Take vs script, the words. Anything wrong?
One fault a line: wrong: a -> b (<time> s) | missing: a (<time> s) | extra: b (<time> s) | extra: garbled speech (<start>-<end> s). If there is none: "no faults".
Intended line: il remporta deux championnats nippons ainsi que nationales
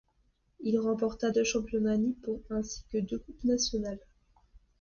extra: deux coupes (3.0 s)